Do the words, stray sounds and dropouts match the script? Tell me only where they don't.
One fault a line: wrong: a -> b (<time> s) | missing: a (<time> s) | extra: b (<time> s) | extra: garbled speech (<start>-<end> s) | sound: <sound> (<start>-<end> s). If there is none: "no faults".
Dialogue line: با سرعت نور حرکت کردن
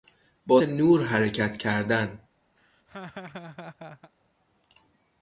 missing: سرعت (0.6 s)
sound: laugh (2.6-4.1 s)